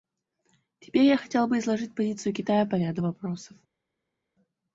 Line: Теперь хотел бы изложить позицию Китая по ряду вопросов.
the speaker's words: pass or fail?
fail